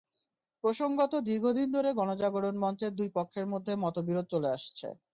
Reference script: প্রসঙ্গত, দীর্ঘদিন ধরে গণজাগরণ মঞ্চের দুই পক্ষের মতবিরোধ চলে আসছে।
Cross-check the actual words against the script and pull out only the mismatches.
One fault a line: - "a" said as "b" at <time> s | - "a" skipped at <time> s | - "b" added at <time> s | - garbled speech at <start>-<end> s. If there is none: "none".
- "মধ্যে" added at 3.5 s